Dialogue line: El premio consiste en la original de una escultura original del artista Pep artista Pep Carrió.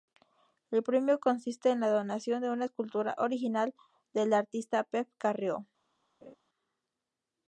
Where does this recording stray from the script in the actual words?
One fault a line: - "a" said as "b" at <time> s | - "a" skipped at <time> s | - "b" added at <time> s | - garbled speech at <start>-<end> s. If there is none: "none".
- "original" said as "donación" at 1.9 s
- "artista Pep" skipped at 5.1 s